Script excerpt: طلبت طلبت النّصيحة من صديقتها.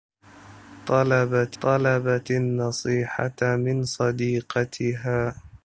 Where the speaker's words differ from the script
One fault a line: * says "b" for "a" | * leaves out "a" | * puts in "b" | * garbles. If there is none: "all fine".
all fine